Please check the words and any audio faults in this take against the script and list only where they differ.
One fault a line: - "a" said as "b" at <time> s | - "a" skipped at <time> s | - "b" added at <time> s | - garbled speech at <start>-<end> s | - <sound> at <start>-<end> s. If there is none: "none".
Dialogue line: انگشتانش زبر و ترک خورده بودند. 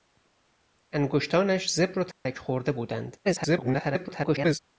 - dropout at 2.1-2.3 s
- garbled speech at 3.2-4.6 s